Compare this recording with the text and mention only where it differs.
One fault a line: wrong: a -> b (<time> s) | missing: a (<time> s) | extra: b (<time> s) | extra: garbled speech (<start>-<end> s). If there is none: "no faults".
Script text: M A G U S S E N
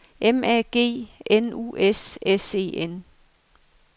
extra: N (1.3 s)